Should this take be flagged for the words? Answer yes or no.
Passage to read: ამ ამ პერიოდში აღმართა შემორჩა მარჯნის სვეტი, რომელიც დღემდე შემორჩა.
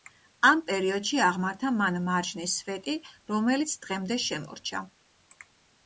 yes